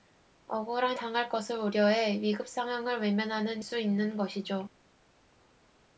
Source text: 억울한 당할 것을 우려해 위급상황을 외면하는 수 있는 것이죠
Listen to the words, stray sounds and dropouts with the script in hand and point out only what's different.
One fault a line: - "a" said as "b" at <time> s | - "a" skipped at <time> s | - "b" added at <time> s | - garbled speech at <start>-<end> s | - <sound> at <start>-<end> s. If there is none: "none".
none